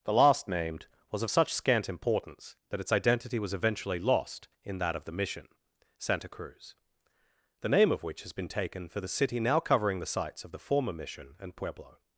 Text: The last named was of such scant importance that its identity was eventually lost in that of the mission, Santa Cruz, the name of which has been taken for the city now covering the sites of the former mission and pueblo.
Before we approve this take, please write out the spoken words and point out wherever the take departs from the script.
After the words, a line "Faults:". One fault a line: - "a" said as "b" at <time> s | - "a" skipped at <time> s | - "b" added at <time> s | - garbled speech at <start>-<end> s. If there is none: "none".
The last named was of such scant importance that its identity was eventually lost in that of the mission, Santa Cruz, the name of which has been taken for the city now covering the sites of the former mission and pueblo.
Faults:
none